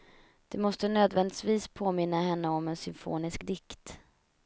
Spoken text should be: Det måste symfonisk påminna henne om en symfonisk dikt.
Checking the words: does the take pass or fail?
fail